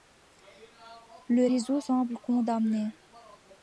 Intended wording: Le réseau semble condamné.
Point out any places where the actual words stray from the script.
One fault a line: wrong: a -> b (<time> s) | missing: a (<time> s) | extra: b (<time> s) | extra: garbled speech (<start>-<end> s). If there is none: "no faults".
no faults